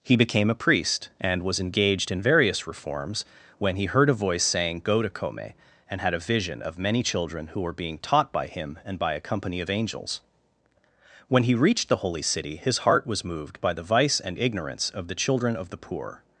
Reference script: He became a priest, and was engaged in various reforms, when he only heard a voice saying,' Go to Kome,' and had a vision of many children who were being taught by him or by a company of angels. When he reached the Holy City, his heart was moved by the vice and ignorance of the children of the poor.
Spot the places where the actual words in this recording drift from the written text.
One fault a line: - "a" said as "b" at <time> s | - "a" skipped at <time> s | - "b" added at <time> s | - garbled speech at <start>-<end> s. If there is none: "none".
- "only" skipped at 3.9 s
- "or" said as "and" at 8.8 s